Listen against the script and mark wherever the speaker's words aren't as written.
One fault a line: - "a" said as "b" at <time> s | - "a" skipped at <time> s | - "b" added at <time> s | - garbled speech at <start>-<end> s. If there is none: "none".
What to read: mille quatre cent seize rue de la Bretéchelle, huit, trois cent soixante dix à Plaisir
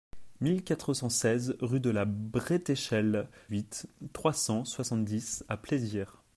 none